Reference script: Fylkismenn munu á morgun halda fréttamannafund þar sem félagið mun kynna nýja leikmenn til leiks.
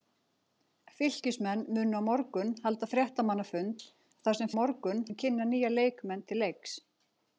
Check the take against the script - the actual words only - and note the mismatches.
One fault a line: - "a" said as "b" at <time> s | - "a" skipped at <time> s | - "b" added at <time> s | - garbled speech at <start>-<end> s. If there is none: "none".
- "félagið" said as "morgun" at 4.6 s